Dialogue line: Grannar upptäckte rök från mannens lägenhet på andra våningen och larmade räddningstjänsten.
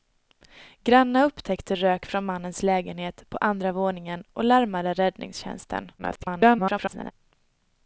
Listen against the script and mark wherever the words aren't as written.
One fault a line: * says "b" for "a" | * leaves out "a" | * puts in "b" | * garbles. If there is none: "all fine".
* garbles